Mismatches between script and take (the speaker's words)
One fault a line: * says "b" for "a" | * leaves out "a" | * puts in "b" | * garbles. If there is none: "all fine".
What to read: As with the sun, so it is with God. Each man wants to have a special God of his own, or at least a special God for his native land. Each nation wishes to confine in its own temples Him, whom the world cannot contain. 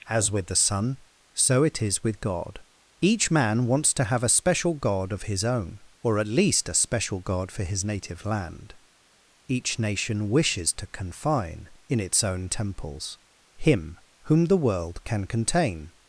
* says "can" for "cannot"